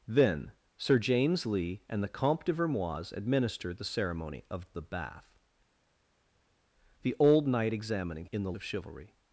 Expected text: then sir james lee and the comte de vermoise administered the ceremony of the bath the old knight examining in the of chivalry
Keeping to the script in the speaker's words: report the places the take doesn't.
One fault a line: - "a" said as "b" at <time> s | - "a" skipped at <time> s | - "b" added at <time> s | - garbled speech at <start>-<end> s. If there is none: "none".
none